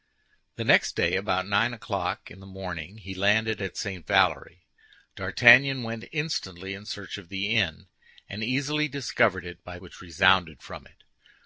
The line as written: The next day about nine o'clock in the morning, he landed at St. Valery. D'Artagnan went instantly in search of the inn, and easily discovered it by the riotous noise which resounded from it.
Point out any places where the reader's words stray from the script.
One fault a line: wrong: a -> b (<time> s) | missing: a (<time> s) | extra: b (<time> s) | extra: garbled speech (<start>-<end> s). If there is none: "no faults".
missing: the riotous noise (9.8 s)